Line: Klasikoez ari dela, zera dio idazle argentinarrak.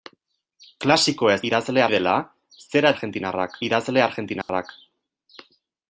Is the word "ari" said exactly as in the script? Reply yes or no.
no